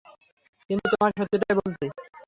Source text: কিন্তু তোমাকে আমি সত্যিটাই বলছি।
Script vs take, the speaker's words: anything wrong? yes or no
yes